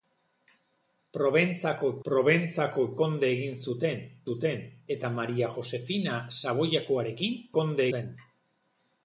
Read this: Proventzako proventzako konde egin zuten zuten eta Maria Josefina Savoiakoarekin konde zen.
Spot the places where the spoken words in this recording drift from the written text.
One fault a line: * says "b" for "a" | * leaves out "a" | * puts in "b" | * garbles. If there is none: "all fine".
all fine